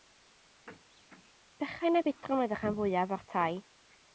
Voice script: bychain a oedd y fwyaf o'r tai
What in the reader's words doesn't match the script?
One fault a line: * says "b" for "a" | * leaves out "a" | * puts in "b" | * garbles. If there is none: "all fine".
* puts in "budron"
* puts in "rhan"